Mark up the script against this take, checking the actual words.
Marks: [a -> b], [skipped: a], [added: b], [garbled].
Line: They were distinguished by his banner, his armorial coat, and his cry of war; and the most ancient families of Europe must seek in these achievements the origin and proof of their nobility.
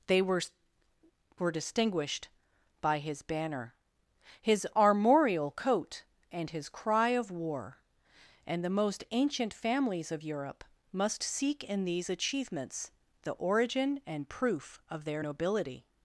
They were [added: were] distinguished by his banner, his armorial coat, and his cry of war; and the most ancient families of Europe must seek in these achievements the origin and proof of their nobility.